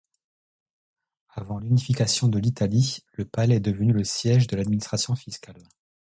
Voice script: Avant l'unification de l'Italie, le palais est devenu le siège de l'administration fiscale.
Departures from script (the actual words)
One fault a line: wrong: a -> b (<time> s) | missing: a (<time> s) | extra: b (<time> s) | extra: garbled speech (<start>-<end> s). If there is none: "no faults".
no faults